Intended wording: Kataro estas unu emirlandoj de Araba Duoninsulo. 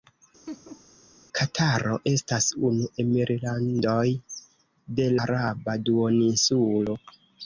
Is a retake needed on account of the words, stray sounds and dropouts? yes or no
yes